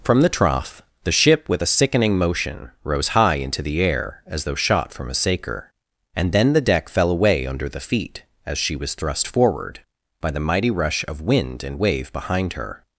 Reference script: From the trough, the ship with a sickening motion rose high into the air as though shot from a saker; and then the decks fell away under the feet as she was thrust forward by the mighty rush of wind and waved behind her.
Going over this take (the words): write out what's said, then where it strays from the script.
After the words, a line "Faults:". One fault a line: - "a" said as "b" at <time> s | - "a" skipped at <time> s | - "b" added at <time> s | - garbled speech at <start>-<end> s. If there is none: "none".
From the trough, the ship with a sickening motion rose high into the air as though shot from a saker; and then the deck fell away under the feet as she was thrust forward by the mighty rush of wind and wave behind her.
Faults:
- "decks" said as "deck" at 6.6 s
- "waved" said as "wave" at 11.8 s